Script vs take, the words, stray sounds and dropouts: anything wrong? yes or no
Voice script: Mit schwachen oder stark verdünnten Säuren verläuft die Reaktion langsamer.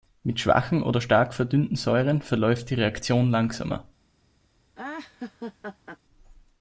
yes